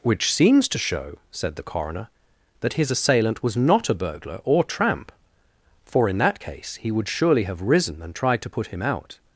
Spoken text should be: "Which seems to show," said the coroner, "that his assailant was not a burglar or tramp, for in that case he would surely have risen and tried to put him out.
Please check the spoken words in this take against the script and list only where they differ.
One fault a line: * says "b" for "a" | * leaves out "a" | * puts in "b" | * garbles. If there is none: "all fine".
all fine